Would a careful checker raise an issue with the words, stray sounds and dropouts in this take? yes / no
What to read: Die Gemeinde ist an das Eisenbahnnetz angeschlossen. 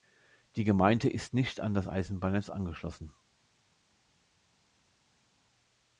yes